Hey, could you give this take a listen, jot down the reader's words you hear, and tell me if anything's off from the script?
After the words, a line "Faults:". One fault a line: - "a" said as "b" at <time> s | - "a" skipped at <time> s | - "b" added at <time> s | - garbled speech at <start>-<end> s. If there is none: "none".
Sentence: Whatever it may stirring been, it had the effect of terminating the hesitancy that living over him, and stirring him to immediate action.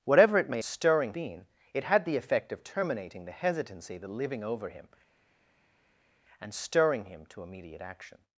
Whatever it may stirring been, it had the effect of terminating the hesitancy that living over him, and stirring him to immediate action.
Faults:
none